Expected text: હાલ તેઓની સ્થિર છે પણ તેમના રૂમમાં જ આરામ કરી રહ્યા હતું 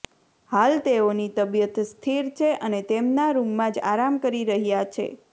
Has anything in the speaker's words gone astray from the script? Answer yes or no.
yes